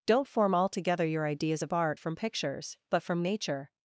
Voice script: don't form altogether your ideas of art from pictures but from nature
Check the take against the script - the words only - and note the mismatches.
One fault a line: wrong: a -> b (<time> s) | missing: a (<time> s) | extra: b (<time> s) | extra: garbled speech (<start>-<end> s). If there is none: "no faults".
no faults